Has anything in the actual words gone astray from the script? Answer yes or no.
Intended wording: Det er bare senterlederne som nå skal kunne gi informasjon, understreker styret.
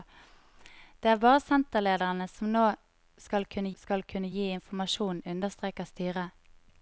yes